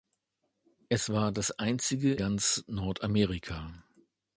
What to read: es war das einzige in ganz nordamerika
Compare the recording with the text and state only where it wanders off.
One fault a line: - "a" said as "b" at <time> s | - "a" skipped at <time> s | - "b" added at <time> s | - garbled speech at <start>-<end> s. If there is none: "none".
- "in" skipped at 2.1 s